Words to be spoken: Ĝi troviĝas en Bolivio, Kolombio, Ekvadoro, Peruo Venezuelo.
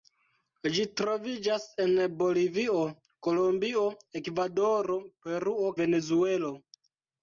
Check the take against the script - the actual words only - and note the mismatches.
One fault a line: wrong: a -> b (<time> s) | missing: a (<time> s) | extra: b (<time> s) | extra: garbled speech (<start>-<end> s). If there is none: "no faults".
no faults